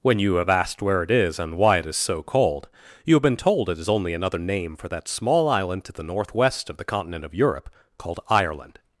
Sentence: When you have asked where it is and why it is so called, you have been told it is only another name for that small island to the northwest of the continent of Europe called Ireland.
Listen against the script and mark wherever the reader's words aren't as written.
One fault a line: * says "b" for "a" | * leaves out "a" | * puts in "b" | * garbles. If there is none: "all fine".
all fine